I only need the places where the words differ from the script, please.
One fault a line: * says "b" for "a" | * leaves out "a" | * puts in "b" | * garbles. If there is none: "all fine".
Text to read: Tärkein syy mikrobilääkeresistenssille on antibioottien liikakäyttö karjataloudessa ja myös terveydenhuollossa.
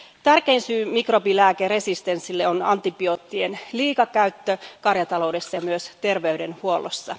all fine